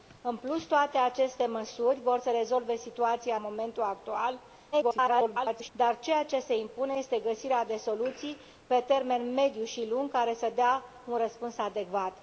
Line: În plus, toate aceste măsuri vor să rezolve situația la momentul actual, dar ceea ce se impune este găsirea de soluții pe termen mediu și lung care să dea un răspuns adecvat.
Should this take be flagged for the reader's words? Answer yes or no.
yes